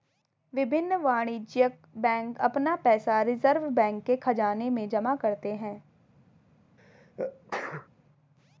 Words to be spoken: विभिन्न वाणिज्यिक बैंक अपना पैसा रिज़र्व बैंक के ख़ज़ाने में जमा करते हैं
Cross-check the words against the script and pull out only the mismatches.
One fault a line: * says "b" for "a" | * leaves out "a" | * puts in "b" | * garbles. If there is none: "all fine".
all fine